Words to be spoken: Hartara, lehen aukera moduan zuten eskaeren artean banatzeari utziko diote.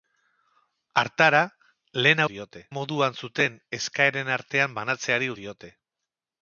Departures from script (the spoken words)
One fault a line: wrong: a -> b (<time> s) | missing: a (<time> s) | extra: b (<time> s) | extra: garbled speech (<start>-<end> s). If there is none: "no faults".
wrong: aukera -> diote (2.3 s)
missing: utziko (5.3 s)